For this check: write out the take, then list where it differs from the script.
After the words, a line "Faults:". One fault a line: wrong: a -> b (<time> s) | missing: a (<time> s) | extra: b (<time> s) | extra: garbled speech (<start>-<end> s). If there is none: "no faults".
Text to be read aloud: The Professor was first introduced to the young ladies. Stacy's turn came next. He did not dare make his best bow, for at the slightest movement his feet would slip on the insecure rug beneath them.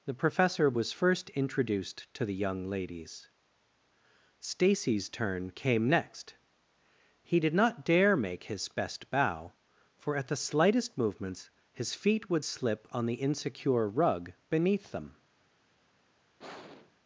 The Professor was first introduced to the young ladies. Stacy's turn came next. He did not dare make his best bow, for at the slightest movements his feet would slip on the insecure rug beneath them.
Faults:
wrong: movement -> movements (11.0 s)